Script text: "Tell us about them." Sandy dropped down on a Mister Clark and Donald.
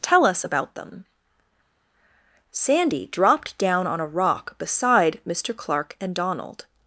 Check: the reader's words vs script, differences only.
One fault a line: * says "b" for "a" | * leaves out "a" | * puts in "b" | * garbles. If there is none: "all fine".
* puts in "rock beside"